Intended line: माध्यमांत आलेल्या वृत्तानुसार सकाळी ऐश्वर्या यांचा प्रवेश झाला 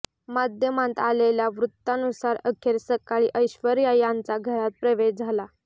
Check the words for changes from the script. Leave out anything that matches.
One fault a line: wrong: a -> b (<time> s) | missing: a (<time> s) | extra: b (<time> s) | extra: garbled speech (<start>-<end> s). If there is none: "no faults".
extra: अखेर (2.5 s)
extra: घरात (4.4 s)